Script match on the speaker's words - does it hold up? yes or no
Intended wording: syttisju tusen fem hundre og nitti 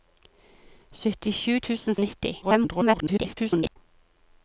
no